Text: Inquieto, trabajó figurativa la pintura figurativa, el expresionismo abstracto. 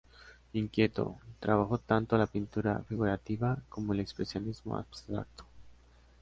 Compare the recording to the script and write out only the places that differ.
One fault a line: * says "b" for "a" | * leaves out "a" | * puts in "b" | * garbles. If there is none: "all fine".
* says "tanto" for "figurativa"
* puts in "como"